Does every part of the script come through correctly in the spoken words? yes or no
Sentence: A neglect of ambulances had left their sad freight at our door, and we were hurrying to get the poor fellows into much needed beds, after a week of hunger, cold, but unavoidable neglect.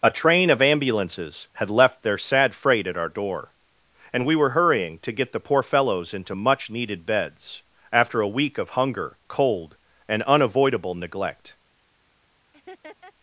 no